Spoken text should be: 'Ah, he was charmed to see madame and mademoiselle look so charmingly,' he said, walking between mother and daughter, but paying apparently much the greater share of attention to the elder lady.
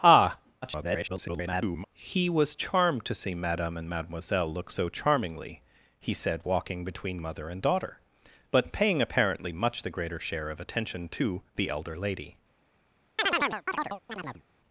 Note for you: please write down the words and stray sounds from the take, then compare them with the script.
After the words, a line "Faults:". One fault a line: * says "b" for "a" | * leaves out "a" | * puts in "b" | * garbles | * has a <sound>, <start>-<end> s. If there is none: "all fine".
'Ah, [garbled] he was charmed to see madame and mademoiselle look so charmingly,' he said, walking between mother and daughter, but paying apparently much the greater share of attention to the elder lady.
Faults:
* garbles
* has a chirp, 13.2-14.4 s